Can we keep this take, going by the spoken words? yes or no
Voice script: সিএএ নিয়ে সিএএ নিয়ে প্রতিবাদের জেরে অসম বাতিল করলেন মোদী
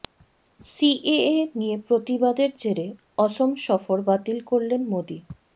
no